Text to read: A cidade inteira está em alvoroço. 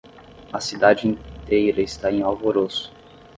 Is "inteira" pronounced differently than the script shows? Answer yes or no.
no